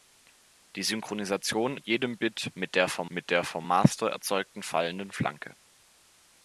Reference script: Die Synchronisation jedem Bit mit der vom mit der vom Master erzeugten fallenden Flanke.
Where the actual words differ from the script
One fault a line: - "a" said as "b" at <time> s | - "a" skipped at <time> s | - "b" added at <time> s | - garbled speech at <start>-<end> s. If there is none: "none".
none